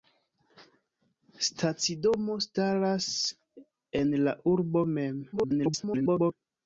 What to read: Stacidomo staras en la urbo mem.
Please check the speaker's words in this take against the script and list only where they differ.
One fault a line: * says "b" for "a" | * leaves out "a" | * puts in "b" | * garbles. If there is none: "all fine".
* garbles